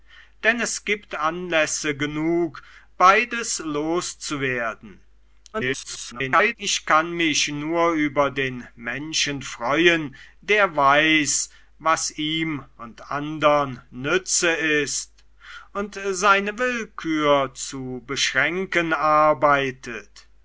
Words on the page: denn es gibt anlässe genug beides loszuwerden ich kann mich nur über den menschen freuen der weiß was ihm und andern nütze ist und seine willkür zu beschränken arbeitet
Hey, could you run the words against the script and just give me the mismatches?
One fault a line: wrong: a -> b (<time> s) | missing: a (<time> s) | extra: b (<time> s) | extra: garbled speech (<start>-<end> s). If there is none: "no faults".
extra: garbled speech (5.5-6.6 s)